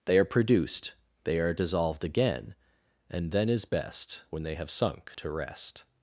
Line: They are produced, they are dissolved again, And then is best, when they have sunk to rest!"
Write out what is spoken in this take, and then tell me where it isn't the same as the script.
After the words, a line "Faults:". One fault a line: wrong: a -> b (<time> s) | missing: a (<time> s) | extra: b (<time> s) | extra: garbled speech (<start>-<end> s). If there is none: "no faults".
They are produced, they are dissolved again, And then is best, when they have sunk to rest!"
Faults:
no faults